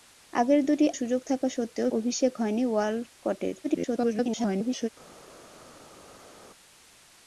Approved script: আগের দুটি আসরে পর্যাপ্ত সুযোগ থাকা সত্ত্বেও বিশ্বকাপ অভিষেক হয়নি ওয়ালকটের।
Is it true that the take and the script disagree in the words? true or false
true